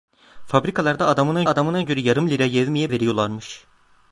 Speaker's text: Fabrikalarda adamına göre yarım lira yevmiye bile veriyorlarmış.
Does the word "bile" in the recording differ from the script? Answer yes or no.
yes